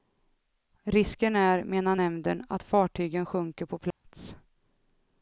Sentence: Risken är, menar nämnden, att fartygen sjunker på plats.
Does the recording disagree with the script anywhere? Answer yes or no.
no